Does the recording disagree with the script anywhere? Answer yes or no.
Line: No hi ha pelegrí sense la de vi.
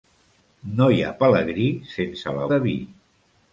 no